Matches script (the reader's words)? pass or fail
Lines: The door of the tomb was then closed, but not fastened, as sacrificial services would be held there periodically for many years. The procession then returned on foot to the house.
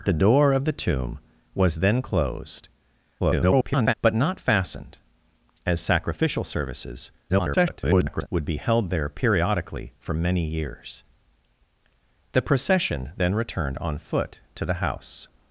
fail